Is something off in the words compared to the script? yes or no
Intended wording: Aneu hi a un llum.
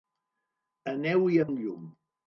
no